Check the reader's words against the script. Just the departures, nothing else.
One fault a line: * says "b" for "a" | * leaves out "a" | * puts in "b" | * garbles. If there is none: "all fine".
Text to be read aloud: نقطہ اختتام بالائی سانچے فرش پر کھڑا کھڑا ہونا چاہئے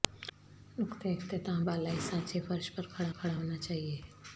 all fine